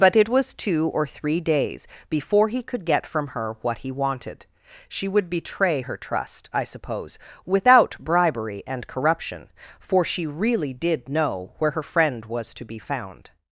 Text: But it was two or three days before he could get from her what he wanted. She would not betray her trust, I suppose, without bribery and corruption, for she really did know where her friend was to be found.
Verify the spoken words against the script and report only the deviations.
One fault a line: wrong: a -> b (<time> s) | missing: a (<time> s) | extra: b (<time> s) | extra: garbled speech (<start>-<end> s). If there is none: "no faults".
missing: not (5.3 s)